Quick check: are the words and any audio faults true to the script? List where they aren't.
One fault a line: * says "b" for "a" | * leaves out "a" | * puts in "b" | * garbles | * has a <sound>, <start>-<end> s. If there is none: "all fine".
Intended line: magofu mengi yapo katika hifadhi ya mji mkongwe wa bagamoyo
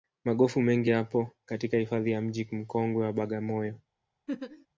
* has a laugh, 4.3-4.7 s